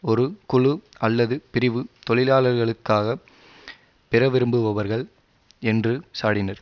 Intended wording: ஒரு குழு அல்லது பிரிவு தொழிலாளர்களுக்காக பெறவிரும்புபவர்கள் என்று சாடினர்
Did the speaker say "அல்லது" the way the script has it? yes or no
yes